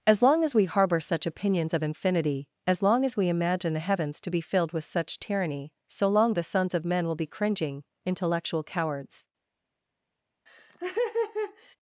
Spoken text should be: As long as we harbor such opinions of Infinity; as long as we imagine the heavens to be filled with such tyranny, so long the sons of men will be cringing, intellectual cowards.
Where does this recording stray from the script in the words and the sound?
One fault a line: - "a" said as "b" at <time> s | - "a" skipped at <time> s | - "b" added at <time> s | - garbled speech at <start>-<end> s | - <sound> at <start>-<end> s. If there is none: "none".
- laugh at 10.5-11.8 s